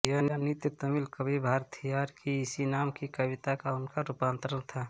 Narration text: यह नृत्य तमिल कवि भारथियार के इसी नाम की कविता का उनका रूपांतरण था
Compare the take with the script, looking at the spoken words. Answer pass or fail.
fail